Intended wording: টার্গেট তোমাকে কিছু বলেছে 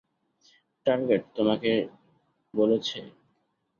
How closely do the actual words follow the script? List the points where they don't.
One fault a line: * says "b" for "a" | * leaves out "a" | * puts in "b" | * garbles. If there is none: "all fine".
* leaves out "কিছু"